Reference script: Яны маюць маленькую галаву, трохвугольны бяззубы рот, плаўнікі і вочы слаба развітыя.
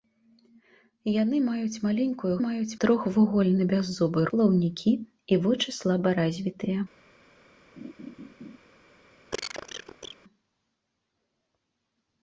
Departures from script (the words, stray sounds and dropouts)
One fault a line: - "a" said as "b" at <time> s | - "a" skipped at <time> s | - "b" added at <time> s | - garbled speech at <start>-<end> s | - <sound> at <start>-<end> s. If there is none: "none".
- "галаву" said as "маюць" at 2.5 s
- "рот" skipped at 4.2 s
- laugh at 7.8-8.6 s
- cough at 9.3-10.2 s